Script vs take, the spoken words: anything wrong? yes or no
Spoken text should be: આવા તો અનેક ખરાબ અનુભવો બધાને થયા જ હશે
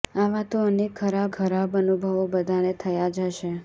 yes